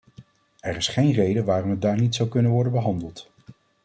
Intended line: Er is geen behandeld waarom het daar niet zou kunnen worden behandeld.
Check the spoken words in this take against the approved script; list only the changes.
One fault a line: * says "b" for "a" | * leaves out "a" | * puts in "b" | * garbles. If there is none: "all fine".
* says "reden" for "behandeld"